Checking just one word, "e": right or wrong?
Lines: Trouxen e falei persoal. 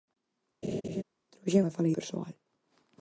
right